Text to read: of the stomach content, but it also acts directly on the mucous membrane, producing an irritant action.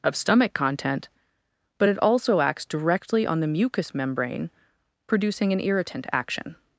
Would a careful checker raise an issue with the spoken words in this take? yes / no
yes